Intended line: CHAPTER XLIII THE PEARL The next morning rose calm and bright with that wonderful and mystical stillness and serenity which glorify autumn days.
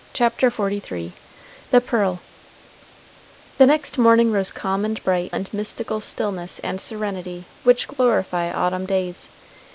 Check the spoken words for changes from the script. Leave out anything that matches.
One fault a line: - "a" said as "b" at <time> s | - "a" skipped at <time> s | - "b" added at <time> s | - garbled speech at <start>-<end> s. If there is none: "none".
- "with that wonderful" skipped at 5.3 s